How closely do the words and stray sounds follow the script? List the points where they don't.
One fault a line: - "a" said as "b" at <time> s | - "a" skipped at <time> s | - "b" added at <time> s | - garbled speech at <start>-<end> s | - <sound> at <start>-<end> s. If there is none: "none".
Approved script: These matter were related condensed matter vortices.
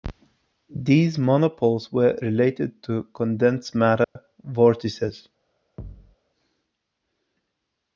- "matter" said as "monopoles" at 1.2 s
- "to" added at 2.8 s
- dropout at 4.0-4.2 s
- thud at 5.8-6.2 s